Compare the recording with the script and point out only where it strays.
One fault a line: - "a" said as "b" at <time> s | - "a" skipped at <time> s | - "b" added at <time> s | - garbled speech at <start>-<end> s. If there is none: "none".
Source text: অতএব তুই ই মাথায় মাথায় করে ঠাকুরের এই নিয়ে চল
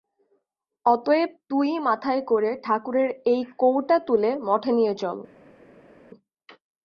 - "মাথায়" skipped at 2.2 s
- "কৌটা তুলে মঠে" added at 3.6 s